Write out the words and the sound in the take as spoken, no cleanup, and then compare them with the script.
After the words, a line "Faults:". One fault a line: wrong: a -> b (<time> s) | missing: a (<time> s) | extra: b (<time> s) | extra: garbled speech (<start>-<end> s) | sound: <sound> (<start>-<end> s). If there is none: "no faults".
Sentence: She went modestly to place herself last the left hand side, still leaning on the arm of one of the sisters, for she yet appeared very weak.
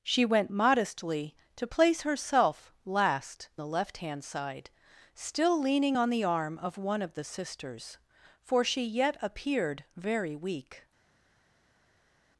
She went modestly to place herself last the left hand side, still leaning on the arm of one of the sisters, for she yet appeared very weak.
Faults:
no faults